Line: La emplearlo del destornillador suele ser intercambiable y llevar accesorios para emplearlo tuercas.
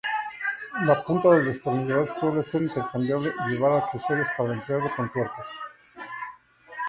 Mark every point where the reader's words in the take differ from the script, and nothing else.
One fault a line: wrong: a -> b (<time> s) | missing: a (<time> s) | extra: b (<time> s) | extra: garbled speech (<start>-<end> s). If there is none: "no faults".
wrong: emplearlo -> punta (1.0 s)
extra: con (4.9 s)